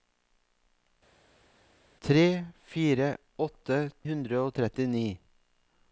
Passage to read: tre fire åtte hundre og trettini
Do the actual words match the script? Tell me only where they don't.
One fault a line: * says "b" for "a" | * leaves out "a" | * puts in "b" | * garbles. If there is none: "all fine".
all fine